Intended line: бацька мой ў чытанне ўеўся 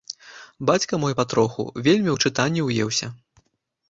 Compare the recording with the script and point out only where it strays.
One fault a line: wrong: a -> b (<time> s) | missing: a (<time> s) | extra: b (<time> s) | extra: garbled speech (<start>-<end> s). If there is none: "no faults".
extra: патроху вельмі (1.2 s)